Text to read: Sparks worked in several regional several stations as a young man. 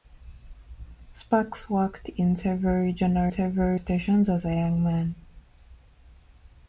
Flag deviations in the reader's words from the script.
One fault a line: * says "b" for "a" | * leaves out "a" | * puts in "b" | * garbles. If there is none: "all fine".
all fine